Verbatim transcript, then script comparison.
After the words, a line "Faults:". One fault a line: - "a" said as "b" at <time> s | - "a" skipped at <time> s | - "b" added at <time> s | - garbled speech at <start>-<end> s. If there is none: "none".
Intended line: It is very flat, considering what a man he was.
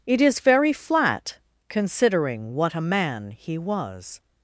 It is very flat, considering what a man he was.
Faults:
none